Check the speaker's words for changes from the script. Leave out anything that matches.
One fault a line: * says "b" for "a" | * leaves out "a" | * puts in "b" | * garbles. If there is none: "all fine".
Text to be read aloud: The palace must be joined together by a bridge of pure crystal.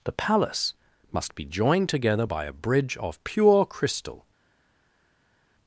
all fine